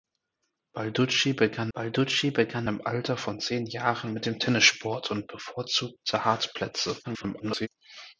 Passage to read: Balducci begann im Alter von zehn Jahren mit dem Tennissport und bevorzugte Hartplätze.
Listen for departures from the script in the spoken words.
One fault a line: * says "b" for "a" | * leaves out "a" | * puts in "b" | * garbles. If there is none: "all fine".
* puts in "balducci begann"
* garbles